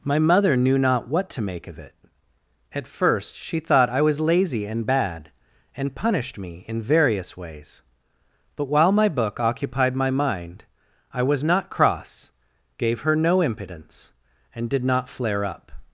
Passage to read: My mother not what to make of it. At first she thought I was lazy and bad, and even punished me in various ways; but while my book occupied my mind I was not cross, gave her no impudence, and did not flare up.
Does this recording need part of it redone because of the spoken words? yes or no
yes